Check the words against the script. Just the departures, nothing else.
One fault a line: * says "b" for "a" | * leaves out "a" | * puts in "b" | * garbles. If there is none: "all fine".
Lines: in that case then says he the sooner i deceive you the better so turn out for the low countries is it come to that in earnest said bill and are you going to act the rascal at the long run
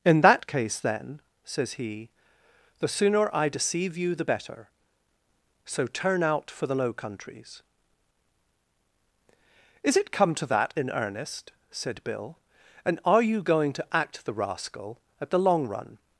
all fine